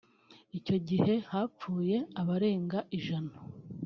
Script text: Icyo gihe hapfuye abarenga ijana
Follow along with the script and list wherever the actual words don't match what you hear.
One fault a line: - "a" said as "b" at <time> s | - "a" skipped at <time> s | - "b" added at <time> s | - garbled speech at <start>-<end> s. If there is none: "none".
none